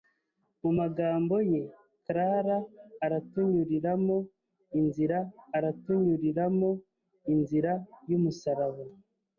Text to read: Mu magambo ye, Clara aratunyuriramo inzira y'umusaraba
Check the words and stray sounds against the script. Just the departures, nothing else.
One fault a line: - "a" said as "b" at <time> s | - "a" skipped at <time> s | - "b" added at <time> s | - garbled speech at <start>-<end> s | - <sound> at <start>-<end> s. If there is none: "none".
- "aratunyuriramo inzira" added at 5.6 s